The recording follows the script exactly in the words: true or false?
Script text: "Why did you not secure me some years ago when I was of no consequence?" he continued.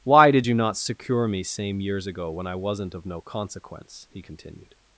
false